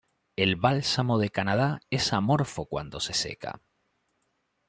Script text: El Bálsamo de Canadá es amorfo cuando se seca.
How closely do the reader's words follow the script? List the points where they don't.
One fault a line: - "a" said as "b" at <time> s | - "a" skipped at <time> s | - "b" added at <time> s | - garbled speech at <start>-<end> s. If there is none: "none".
none